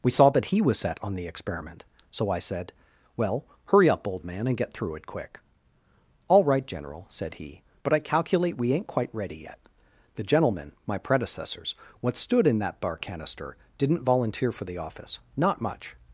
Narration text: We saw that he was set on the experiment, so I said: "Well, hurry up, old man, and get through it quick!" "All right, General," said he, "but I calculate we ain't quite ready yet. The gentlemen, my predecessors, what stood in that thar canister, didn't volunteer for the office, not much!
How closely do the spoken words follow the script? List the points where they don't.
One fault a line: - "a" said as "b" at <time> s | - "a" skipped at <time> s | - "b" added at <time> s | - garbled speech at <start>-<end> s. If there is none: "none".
- "thar" said as "bar" at 12.8 s